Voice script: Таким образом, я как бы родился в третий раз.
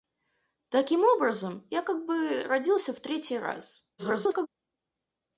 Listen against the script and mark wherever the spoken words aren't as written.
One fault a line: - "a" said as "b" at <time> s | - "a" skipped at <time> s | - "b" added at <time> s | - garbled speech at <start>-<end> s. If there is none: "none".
- garbled speech at 4.0-4.5 s